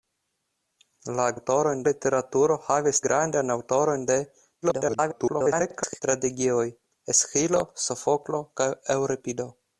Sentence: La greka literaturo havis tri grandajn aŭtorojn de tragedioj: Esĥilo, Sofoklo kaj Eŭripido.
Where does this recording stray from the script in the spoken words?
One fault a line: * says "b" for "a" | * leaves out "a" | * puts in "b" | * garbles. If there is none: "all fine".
* says "aŭtorojn" for "greka"
* leaves out "tri"
* garbles